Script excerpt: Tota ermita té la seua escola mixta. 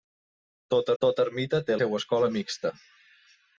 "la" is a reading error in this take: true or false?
true